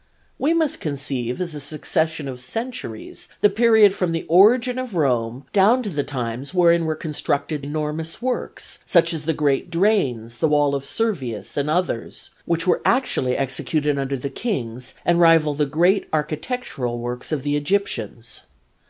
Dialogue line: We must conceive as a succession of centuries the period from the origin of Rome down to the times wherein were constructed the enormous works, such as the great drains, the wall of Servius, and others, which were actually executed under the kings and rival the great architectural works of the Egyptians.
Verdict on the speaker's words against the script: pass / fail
fail